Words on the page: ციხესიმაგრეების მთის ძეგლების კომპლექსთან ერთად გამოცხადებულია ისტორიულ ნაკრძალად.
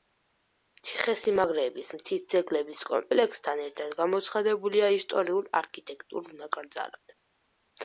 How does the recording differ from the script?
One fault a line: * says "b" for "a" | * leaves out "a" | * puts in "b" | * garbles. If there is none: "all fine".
* puts in "არქიტექტურულ"